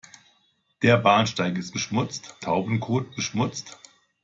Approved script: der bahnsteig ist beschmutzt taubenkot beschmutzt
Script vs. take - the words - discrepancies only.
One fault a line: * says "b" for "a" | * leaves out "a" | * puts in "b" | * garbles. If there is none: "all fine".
all fine